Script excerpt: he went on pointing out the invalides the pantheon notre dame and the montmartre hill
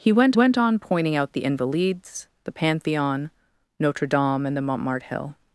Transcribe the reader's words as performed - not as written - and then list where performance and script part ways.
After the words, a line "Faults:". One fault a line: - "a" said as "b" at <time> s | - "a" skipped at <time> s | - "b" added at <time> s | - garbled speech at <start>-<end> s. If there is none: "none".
he went went on pointing out the invalides the pantheon notre dame and the montmartre hill
Faults:
- "went" added at 0.3 s